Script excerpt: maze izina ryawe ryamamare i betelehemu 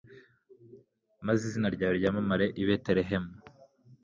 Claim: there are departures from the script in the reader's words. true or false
false